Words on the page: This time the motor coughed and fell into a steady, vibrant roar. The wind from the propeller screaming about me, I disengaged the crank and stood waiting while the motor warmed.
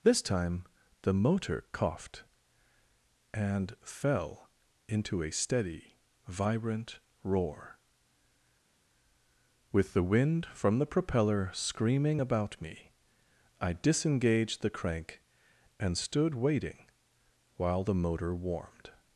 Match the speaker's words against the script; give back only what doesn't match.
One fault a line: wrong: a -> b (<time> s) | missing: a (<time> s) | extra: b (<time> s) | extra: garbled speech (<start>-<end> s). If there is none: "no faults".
extra: With (9.7 s)